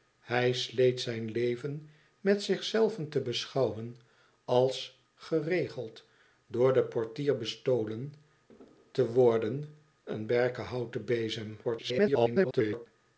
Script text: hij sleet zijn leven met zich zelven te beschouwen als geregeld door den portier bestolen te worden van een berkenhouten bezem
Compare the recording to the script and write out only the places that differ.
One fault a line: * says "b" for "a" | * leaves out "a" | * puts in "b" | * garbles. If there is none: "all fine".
* leaves out "van"
* garbles